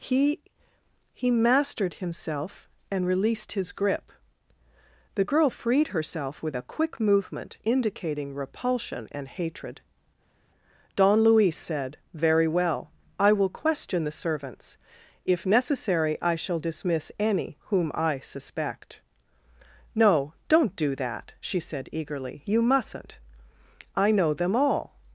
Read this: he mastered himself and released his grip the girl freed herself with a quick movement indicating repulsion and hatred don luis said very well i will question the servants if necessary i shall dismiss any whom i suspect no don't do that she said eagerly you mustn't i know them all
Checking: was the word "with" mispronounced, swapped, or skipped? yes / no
no